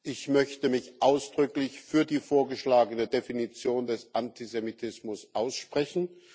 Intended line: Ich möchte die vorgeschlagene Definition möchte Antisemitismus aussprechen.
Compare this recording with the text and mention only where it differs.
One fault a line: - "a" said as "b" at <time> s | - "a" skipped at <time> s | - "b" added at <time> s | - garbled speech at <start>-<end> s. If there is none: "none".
- "mich ausdrücklich für" added at 0.7 s
- "möchte" said as "des" at 3.9 s